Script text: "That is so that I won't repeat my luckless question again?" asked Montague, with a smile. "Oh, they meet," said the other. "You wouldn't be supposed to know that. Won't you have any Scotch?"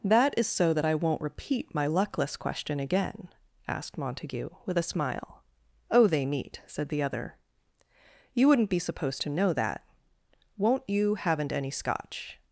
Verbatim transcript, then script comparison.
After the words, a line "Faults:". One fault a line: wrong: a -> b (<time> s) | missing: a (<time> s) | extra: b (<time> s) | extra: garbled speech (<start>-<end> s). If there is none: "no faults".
"That is so that I won't repeat my luckless question again?" asked Montague, with a smile. "Oh, they meet," said the other. "You wouldn't be supposed to know that. Won't you haven't any Scotch?"
Faults:
wrong: have -> haven't (11.2 s)